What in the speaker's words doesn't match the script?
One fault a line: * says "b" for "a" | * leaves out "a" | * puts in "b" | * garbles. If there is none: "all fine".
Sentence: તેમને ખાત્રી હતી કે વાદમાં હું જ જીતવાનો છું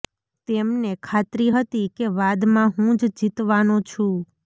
all fine